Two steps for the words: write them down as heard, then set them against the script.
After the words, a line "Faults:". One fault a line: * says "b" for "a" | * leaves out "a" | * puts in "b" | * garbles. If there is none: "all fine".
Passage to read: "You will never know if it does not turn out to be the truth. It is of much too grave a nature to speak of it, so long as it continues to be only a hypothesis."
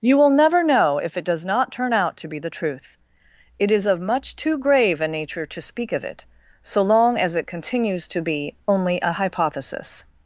"You will never know if it does not turn out to be the truth. It is of much too grave a nature to speak of it, so long as it continues to be only a hypothesis."
Faults:
all fine